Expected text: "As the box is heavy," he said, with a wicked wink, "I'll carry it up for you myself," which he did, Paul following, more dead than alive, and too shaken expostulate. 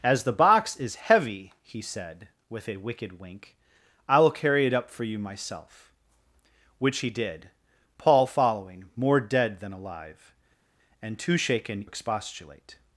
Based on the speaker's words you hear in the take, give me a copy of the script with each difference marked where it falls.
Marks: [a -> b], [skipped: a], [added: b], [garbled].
"As the box is heavy," he said, with a wicked wink, "I'll carry it up for you myself," which he did, Paul following, more dead than alive, and too shaken expostulate.